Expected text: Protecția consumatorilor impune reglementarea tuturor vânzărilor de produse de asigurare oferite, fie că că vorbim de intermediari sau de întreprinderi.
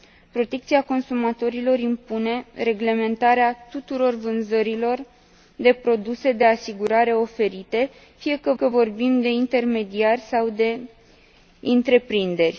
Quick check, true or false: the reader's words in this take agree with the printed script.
true